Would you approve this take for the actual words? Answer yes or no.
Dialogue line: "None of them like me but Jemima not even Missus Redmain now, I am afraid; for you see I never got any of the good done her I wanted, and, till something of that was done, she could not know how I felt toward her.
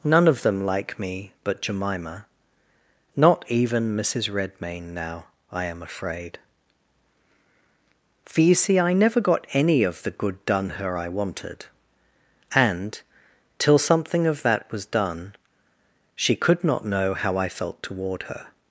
yes